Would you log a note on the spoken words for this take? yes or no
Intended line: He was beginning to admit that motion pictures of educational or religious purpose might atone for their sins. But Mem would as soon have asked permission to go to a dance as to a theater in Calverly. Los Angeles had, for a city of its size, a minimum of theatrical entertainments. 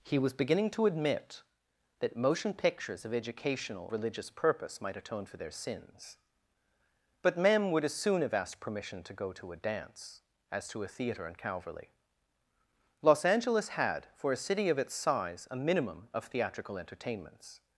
yes